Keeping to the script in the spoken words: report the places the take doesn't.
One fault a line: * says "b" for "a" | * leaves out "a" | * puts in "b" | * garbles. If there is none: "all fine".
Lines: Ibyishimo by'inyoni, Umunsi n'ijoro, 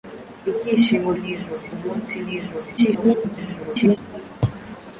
* says "n'ijoro" for "by'inyoni"
* garbles